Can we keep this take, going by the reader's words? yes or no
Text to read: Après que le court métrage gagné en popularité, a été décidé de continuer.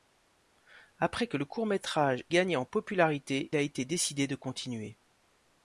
yes